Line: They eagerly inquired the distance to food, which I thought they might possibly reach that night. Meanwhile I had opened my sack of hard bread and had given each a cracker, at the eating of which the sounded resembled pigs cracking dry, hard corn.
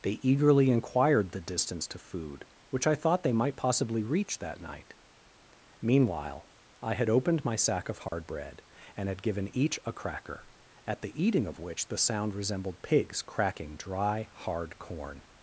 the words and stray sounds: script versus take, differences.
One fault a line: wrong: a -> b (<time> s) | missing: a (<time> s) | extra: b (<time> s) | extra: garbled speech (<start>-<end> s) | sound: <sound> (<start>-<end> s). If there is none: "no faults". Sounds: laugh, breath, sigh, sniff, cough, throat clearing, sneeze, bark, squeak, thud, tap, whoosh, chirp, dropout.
sound: dropout (8.1-8.1 s)
wrong: sounded -> sound (12.0 s)